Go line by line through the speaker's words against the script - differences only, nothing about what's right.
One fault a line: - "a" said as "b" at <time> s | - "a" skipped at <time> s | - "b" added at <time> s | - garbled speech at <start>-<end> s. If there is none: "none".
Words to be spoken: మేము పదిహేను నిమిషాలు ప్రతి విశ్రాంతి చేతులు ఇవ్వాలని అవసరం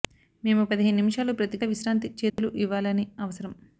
none